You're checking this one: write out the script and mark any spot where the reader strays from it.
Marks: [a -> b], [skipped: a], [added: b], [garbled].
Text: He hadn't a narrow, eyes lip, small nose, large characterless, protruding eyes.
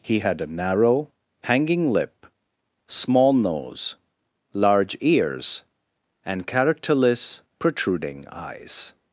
He [hadn't -> had] a narrow, [eyes -> hanging] lip, small nose, large [added: ears and] characterless, protruding eyes.